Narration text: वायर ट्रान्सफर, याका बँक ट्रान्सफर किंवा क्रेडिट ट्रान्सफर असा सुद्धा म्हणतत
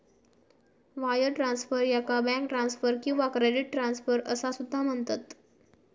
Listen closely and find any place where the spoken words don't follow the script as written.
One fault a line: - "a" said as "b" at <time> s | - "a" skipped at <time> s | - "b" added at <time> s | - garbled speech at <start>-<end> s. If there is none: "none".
none